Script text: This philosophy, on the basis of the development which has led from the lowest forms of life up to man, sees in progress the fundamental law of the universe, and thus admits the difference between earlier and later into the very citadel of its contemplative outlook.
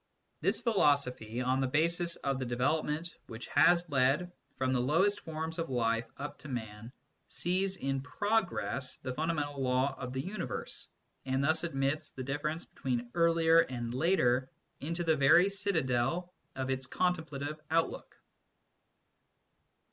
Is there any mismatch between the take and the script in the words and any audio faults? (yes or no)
no